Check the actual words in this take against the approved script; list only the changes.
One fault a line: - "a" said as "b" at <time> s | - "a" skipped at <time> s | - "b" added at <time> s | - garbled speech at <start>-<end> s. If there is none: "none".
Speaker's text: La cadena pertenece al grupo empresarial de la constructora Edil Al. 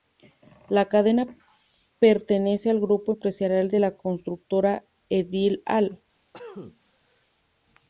none